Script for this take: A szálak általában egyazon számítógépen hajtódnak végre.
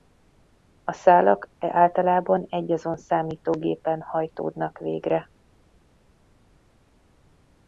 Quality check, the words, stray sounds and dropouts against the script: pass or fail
pass